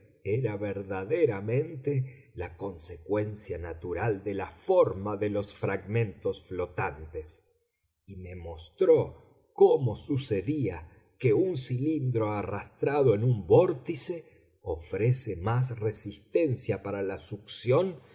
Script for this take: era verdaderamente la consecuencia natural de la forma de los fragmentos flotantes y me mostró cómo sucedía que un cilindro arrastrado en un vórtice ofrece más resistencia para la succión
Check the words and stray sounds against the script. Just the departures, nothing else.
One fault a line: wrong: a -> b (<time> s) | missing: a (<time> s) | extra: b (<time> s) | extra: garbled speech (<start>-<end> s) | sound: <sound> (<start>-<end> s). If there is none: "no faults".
no faults